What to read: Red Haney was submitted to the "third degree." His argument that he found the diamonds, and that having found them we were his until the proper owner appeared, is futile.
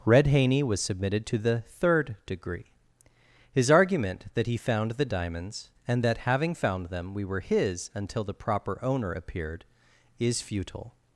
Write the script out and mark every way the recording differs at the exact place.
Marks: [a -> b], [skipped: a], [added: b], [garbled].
Red Haney was submitted to the "third degree." His argument that he found the diamonds, and that having found them we were his until the proper owner appeared, is futile.